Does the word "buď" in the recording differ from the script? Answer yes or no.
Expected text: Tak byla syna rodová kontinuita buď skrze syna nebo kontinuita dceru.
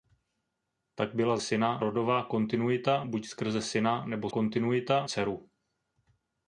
no